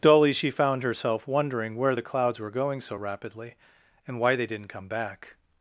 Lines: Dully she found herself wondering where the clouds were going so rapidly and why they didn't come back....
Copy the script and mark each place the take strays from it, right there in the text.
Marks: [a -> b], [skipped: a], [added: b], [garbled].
Dully she found herself wondering where the clouds were going so rapidly and why they didn't come back....